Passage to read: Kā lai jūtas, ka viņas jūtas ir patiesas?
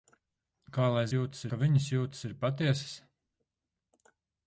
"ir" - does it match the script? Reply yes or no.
yes